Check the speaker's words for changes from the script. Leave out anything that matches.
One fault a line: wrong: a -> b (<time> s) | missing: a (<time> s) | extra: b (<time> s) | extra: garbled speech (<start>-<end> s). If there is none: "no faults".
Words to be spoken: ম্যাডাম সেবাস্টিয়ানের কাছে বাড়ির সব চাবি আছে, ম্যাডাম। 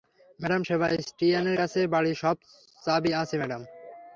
no faults